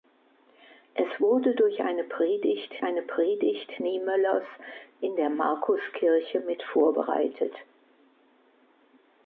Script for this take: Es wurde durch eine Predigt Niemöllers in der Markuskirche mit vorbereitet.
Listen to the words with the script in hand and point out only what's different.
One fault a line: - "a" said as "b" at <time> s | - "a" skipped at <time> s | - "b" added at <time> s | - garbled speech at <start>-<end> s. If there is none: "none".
- "eine Predigt" added at 2.8 s